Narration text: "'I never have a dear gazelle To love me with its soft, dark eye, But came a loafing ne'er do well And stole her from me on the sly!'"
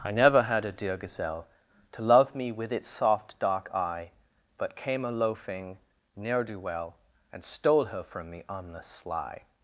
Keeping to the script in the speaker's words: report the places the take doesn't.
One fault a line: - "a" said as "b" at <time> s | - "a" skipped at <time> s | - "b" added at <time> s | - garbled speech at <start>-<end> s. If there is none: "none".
- "have" said as "had" at 0.4 s